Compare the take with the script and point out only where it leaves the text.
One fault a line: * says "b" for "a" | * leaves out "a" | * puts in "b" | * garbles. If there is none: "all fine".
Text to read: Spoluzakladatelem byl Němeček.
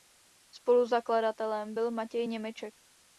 * puts in "Matěj"